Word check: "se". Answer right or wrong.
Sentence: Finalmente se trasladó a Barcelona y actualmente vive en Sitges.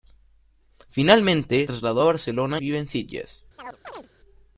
wrong